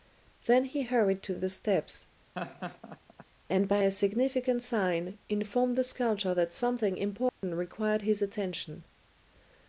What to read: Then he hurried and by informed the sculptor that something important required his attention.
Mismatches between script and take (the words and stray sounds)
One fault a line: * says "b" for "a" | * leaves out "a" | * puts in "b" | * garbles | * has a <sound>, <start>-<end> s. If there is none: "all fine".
* puts in "to the steps"
* has a laugh, 2.3-3.2 s
* puts in "a significant sign"
* has a dropout, 7.3-7.4 s